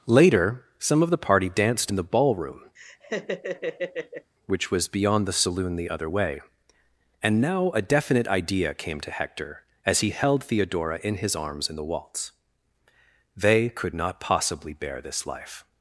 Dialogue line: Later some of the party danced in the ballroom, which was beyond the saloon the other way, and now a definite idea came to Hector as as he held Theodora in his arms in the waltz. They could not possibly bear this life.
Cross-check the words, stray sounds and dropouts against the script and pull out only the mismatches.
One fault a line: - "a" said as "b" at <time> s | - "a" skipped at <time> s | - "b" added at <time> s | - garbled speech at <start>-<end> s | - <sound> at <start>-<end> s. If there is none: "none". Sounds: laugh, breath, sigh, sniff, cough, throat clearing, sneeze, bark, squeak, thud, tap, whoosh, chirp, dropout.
- laugh at 2.8-4.3 s
- "as" skipped at 10.0 s